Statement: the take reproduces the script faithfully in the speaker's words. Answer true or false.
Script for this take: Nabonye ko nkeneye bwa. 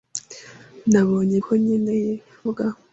true